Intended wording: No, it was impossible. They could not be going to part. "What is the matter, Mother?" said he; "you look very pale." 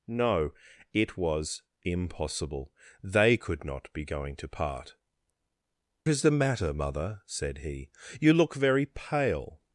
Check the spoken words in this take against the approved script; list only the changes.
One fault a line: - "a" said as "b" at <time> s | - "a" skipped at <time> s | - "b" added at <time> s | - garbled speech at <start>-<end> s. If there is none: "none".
- "What" skipped at 5.0 s